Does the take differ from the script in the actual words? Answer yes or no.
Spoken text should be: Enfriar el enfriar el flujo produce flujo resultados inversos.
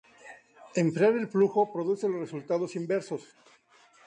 yes